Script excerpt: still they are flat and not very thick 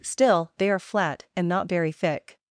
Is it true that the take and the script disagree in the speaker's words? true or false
false